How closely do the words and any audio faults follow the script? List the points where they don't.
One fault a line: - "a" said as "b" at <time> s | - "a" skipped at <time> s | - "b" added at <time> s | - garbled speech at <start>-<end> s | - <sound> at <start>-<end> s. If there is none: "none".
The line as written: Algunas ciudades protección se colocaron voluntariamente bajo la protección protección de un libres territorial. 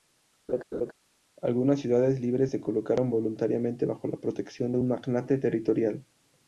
- laugh at 0.5-0.9 s
- "protección" said as "libres" at 2.2 s
- "protección" skipped at 4.7 s
- "libres" said as "magnate" at 4.9 s